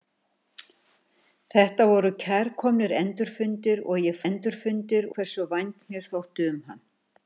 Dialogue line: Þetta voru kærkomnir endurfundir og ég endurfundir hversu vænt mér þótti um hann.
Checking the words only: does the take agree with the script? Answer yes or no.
yes